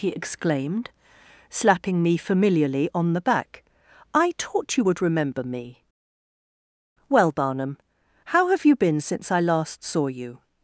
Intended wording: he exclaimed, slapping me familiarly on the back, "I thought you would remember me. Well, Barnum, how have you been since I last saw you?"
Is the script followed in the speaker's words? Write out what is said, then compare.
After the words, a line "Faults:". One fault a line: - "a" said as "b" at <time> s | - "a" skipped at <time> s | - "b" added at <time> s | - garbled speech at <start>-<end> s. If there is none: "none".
he exclaimed, slapping me familiarly on the back, "I taught you would remember me. Well, Barnum, how have you been since I last saw you?"
Faults:
- "thought" said as "taught" at 4.4 s